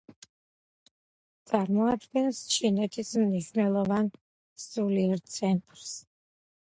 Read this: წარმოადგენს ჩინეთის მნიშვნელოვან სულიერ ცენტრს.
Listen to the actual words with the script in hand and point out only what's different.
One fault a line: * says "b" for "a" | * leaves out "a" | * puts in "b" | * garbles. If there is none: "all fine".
all fine